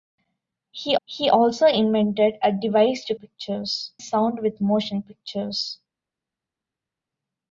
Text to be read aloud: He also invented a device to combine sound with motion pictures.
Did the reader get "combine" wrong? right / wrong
wrong